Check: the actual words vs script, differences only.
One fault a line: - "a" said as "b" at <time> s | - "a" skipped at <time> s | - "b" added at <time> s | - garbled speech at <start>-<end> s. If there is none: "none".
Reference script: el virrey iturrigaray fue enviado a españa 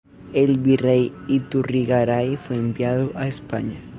none